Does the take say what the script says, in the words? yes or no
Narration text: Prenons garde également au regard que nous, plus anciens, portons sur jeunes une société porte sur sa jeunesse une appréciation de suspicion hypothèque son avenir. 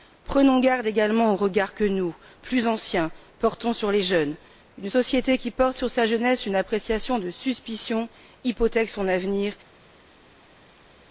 no